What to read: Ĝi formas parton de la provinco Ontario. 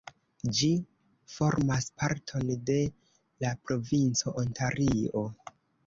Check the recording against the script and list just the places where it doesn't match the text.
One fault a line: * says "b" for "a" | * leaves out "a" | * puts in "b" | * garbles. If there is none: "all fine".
all fine